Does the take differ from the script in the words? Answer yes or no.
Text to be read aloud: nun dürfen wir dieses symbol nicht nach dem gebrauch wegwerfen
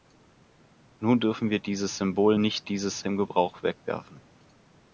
yes